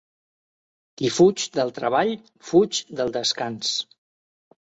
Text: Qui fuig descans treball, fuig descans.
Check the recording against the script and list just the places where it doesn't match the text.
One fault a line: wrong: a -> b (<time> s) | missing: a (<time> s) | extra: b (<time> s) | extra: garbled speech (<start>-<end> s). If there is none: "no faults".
wrong: descans -> del (1.6 s)
extra: del (3.0 s)